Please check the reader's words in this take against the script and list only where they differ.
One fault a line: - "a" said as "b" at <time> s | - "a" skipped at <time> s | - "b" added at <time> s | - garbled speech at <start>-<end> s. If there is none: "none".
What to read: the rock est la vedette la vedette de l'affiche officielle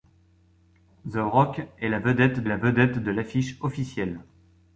none